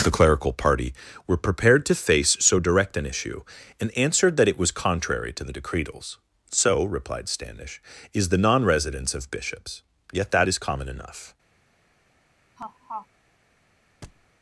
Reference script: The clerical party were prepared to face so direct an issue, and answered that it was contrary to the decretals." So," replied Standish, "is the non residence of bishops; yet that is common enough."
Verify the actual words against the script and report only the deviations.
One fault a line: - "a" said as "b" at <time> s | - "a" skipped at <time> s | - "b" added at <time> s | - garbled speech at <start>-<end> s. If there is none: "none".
none